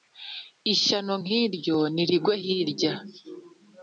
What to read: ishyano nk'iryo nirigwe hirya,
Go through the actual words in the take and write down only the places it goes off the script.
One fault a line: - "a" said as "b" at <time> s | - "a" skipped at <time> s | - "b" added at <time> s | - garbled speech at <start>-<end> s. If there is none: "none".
none